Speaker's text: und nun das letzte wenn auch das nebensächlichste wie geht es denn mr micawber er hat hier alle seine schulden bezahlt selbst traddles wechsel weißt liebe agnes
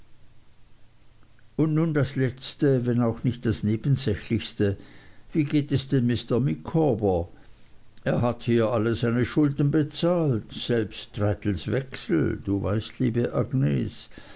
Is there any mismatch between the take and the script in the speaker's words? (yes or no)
yes